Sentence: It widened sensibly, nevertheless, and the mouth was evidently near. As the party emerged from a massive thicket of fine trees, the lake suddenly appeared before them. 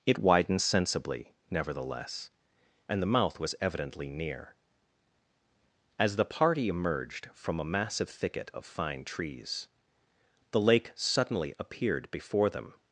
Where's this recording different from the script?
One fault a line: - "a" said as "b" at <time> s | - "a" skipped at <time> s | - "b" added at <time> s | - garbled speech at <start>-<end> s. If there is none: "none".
none